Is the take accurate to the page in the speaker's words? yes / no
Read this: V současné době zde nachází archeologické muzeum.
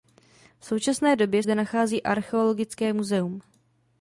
yes